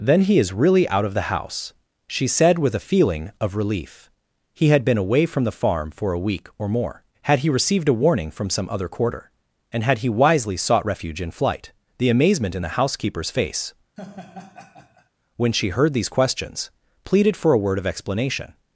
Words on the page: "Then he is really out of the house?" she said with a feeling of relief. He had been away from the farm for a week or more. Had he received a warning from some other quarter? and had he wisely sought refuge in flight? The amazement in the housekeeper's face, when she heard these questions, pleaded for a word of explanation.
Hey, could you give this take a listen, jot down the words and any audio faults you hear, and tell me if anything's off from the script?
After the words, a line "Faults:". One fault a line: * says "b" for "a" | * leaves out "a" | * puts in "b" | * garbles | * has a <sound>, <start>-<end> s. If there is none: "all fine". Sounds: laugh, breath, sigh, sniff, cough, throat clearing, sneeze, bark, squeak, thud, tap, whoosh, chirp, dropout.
"Then he is really out of the house?" she said with a feeling of relief. He had been away from the farm for a week or more. Had he received a warning from some other quarter? and had he wisely sought refuge in flight? The amazement in the housekeeper's face, when she heard these questions, pleaded for a word of explanation.
Faults:
* has a laugh, 14.0-15.1 s